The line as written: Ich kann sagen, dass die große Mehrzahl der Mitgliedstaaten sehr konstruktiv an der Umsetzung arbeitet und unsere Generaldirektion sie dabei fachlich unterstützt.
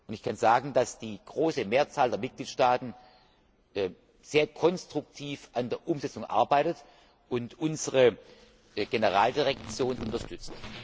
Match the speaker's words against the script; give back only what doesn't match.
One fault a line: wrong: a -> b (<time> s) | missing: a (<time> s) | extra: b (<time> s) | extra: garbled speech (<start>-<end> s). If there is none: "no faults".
missing: sie dabei fachlich (10.0 s)